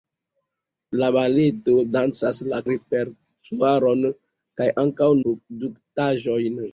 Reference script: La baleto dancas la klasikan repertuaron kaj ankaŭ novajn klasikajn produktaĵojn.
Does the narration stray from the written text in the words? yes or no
yes